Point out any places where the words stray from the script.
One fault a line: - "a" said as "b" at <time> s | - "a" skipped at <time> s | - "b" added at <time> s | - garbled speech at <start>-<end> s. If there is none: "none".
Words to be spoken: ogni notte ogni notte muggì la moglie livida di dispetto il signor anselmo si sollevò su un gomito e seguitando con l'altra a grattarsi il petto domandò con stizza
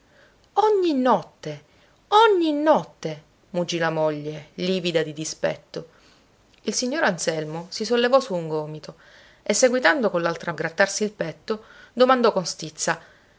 none